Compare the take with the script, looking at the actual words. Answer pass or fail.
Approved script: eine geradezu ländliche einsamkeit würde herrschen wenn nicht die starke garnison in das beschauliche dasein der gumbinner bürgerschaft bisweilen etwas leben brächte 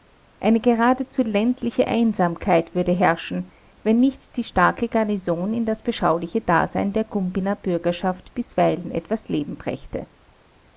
pass